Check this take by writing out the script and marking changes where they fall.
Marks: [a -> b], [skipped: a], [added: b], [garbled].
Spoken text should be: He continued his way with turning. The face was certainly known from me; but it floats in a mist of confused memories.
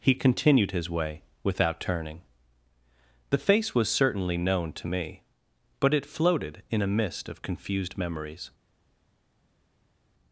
He continued his way [with -> without] turning. The face was certainly known [from -> to] me; but it [floats -> floated] in a mist of confused memories.